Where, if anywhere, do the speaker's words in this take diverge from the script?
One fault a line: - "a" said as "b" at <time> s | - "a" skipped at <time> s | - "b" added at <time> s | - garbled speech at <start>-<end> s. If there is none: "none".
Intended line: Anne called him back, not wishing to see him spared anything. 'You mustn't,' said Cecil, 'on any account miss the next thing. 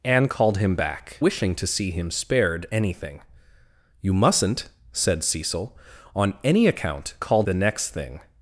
- "not" skipped at 1.2 s
- "miss" said as "called" at 7.2 s